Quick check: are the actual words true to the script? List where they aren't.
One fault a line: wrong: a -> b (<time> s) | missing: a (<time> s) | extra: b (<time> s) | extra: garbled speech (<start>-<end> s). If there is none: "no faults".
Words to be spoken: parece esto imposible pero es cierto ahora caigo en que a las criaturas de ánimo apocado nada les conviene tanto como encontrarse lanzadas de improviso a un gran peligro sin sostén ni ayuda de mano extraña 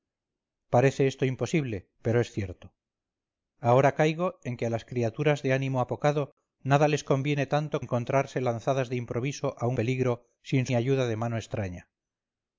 missing: como (7.8 s)
missing: gran (9.8 s)
missing: sostén (10.7 s)